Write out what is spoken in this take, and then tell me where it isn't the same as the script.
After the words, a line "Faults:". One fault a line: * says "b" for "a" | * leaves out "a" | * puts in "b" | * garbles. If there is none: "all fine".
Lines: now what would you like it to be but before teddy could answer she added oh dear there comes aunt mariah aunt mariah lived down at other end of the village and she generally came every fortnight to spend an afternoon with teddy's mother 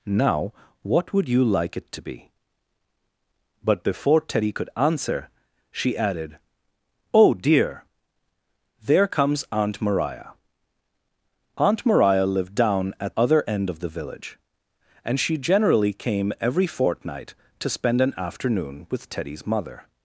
now what would you like it to be but before teddy could answer she added oh dear there comes aunt mariah aunt mariah lived down at other end of the village and she generally came every fortnight to spend an afternoon with teddy's mother
Faults:
all fine